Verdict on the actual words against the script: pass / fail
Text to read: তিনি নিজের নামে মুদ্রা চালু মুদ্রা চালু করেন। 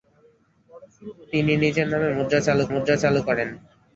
pass